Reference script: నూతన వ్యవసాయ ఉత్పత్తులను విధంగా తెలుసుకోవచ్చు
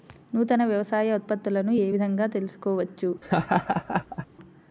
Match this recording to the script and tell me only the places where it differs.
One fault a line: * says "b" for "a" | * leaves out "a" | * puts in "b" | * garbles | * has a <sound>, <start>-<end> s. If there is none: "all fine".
* puts in "ఏ"
* has a laugh, 3.2-4.3 s